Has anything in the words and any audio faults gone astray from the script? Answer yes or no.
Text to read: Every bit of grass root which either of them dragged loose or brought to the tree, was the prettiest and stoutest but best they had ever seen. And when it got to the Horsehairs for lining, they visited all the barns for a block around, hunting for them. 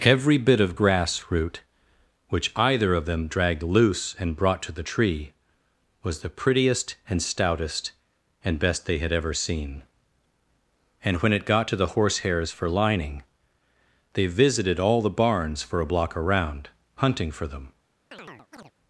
yes